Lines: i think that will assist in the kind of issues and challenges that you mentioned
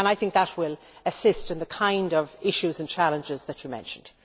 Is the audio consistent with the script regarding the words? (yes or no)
yes